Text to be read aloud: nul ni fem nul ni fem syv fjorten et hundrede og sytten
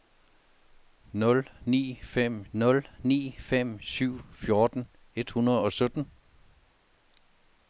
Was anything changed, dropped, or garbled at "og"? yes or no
no